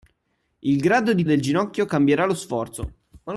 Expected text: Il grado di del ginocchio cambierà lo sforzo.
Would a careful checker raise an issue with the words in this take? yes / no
no